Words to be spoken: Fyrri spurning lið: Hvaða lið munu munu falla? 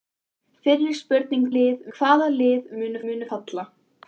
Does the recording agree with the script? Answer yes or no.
yes